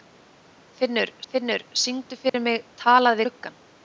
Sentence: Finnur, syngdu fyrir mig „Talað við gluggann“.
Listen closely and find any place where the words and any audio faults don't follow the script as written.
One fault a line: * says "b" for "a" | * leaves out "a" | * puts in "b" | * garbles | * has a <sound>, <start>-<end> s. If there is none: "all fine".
* puts in "finnur"
* has a dropout, 2.3-2.3 s
* leaves out "við"